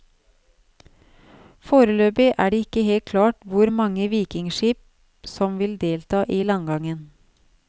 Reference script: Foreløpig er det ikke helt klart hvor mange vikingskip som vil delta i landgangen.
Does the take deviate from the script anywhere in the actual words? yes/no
no